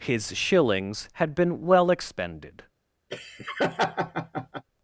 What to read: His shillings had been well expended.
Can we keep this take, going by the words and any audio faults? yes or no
no